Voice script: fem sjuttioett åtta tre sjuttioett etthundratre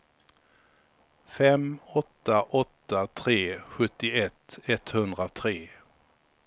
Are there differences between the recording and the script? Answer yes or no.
yes